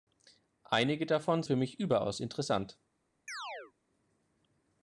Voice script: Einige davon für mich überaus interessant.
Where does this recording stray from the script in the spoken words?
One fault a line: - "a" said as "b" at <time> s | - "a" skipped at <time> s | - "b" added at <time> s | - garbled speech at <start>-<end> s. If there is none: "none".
none